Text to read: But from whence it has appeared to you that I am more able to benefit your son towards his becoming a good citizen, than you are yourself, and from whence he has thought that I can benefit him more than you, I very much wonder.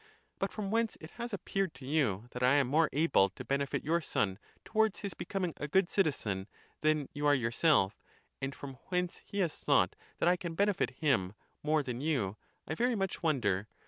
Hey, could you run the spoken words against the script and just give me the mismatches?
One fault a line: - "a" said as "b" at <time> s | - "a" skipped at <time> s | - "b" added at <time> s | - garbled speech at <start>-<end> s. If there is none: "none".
none